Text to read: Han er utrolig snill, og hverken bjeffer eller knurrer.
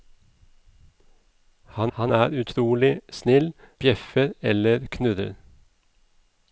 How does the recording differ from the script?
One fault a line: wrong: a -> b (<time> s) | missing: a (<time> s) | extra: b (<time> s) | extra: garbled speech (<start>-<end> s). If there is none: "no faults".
extra: han (2.0 s)
missing: og hverken (3.5 s)